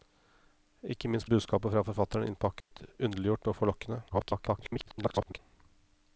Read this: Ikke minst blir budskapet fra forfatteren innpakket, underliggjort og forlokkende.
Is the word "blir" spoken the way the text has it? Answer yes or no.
no